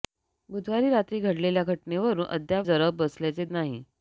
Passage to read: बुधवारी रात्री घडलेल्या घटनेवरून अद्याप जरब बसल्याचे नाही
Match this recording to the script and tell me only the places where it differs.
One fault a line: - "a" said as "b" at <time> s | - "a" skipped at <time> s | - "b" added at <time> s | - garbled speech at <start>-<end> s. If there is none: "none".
none